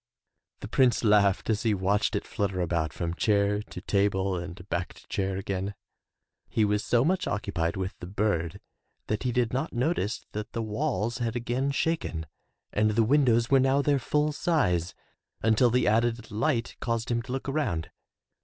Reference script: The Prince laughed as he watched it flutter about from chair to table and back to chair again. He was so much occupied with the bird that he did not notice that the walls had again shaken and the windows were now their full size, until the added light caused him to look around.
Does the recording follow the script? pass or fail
pass